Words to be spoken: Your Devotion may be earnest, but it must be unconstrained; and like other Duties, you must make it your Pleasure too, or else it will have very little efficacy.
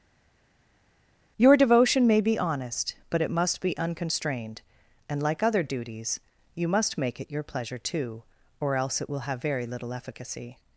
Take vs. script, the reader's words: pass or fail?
fail